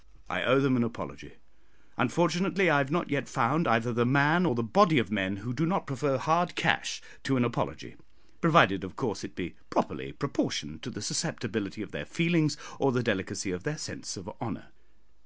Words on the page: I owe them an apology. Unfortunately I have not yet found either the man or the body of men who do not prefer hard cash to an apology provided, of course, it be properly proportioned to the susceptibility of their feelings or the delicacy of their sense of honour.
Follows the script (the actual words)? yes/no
yes